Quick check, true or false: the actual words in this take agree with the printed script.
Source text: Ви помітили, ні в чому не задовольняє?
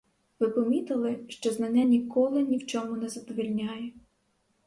false